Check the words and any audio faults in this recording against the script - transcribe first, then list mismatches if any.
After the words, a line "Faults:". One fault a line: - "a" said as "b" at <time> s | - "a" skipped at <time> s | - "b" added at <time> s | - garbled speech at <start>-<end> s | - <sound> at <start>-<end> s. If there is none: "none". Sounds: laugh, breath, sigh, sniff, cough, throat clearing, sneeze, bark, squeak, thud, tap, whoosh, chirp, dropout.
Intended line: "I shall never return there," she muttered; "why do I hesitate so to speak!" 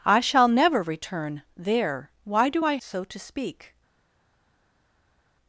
"I shall never return there; "why do I so to speak!"
Faults:
- "she muttered" skipped at 2.1 s
- "hesitate" skipped at 2.8 s